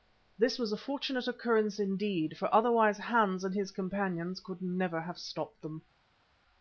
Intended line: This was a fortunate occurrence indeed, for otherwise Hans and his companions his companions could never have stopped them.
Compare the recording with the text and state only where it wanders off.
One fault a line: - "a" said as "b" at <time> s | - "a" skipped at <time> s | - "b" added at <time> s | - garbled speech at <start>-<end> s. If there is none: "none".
- "his companions" skipped at 4.4 s